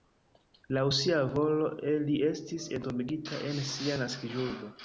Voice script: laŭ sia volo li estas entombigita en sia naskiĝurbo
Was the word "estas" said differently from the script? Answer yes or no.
yes